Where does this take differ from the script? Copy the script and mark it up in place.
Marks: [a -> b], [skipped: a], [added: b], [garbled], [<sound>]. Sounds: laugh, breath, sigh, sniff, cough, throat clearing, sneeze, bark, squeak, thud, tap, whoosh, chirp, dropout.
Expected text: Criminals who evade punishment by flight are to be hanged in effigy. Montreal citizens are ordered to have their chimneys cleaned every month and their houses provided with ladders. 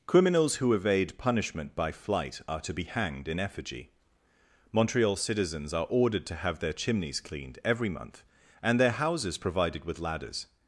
Criminals who evade punishment by flight are to be hanged in effigy. Montreal citizens are ordered to have their chimneys cleaned every month and their houses provided with ladders.